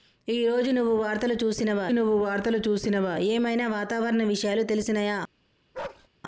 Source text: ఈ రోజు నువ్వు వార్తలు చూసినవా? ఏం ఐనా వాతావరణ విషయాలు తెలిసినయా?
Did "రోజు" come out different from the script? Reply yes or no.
no